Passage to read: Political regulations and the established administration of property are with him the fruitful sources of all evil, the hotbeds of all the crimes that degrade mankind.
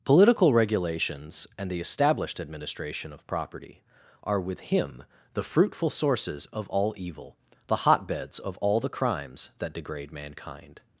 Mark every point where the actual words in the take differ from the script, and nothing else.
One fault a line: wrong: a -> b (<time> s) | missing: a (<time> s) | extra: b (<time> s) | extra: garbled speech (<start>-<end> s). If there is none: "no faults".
no faults